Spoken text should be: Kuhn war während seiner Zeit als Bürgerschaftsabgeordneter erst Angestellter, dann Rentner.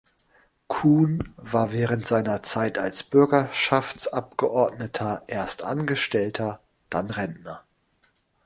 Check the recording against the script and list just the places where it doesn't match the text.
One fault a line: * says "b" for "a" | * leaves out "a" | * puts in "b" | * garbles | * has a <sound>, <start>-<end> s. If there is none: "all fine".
all fine